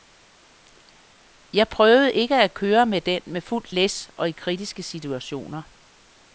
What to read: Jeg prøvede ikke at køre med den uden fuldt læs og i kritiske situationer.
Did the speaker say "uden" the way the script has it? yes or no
no